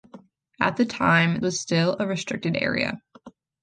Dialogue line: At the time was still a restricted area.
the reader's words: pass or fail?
pass